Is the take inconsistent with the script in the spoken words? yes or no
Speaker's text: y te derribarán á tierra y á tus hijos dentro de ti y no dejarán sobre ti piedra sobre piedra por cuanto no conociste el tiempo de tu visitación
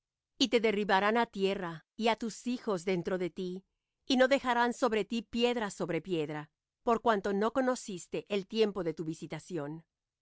no